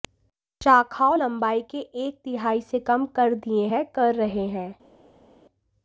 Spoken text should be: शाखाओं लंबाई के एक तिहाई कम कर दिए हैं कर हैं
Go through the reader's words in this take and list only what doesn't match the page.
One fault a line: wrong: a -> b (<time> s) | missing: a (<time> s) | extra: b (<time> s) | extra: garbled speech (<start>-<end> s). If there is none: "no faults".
extra: से (2.6 s)
extra: रहे (4.1 s)